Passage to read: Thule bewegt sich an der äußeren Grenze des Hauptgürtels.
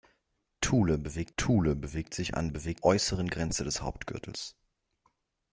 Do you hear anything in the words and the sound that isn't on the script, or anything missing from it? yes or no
yes